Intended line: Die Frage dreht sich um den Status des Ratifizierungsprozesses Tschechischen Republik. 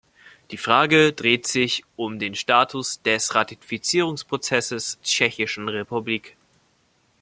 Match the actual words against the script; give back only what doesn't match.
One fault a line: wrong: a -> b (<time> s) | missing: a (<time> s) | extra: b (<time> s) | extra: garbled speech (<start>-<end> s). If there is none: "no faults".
no faults